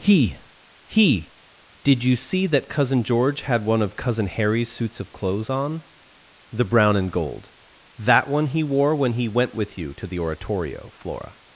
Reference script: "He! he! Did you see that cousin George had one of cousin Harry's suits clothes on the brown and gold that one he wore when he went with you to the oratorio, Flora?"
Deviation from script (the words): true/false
true